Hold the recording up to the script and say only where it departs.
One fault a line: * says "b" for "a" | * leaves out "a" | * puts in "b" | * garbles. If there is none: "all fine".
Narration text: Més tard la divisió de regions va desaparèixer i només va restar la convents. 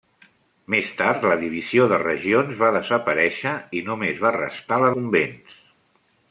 all fine